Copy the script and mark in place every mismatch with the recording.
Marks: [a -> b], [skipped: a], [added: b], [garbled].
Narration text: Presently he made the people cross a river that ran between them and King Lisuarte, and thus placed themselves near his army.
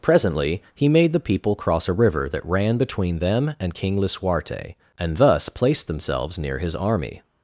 Presently he made the people cross a river that ran between them and King Lisuarte, and thus placed themselves near his army.